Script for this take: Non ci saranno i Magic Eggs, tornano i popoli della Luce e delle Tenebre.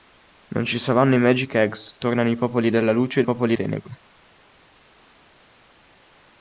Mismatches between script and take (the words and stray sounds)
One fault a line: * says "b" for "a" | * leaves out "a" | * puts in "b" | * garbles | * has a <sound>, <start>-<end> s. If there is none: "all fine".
* says "popoli" for "delle"